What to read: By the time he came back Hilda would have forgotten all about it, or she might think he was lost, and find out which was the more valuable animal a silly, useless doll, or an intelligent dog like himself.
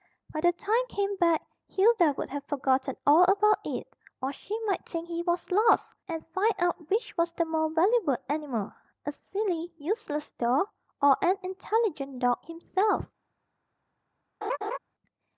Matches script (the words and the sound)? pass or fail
fail